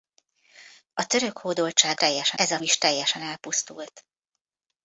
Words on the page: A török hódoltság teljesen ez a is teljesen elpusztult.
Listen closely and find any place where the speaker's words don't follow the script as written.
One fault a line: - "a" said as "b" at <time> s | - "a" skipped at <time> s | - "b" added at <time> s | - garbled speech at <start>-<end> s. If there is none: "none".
none